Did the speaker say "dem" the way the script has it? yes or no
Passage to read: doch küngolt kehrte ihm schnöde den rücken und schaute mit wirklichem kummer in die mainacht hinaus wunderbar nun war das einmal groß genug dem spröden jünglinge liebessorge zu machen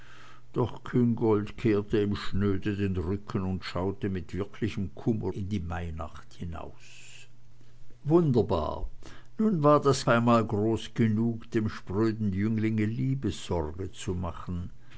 yes